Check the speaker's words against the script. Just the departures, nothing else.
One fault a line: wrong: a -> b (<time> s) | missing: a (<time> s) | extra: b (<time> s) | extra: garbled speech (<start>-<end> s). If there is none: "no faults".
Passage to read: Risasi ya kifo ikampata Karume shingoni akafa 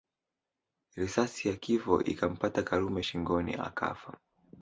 no faults